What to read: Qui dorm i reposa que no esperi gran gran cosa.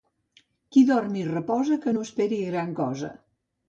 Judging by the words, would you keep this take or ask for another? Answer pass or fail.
fail